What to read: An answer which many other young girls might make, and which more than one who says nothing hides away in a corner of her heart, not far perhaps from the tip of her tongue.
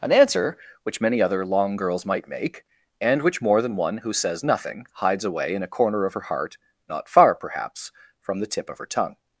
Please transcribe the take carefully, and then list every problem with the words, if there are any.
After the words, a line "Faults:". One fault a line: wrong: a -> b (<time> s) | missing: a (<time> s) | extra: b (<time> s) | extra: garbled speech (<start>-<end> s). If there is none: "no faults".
An answer which many other long girls might make, and which more than one who says nothing hides away in a corner of her heart, not far perhaps from the tip of her tongue.
Faults:
wrong: young -> long (1.4 s)